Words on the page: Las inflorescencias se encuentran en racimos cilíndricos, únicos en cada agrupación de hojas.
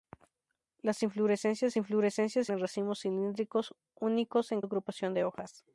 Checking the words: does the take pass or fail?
fail